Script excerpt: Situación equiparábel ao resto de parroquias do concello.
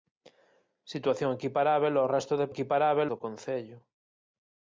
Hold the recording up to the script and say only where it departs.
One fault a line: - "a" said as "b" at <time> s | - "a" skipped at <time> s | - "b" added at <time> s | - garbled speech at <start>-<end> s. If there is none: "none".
- "parroquias" said as "equiparábel" at 2.5 s